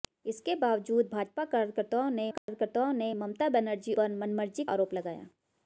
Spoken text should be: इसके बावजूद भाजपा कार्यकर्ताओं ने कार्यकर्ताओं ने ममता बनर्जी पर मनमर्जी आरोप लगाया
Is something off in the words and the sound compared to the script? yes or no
yes